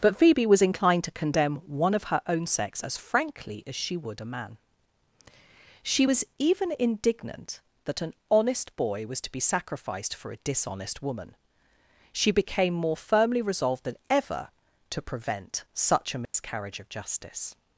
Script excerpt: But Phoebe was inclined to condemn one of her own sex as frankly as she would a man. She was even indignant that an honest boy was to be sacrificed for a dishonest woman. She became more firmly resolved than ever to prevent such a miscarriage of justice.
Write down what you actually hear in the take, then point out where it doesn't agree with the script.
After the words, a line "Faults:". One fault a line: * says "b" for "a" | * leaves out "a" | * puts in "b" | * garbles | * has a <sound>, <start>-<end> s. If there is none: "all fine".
But Phoebe was inclined to condemn one of her own sex as frankly as she would a man. She was even indignant that an honest boy was to be sacrificed for a dishonest woman. She became more firmly resolved than ever to prevent such a miscarriage of justice.
Faults:
* has a dropout, 16.3-16.3 s